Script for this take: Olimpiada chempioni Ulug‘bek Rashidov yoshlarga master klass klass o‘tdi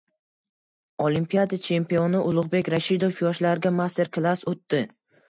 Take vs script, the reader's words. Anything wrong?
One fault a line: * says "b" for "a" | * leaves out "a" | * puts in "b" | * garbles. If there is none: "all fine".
* leaves out "klass"